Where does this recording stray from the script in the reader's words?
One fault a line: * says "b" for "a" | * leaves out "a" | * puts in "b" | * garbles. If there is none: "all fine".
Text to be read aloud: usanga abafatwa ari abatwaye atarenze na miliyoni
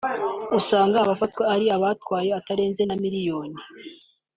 all fine